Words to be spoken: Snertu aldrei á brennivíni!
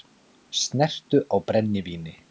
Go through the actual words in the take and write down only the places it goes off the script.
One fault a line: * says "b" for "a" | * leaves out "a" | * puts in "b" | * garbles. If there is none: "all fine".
* leaves out "aldrei"